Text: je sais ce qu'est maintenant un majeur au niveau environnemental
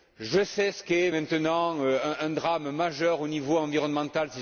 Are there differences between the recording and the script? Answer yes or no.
yes